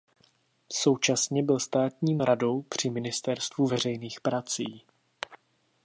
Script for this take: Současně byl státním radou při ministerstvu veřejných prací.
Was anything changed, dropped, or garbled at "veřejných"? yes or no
no